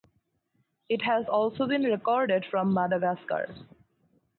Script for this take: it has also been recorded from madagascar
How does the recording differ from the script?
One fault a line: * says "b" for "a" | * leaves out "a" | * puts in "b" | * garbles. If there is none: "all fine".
all fine